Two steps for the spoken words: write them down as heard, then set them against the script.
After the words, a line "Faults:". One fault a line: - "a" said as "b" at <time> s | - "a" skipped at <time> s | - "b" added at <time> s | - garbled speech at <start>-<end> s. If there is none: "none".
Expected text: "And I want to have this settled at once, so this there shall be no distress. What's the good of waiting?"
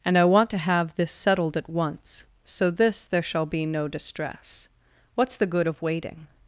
"And I want to have this settled at once, so this there shall be no distress. What's the good of waiting?"
Faults:
none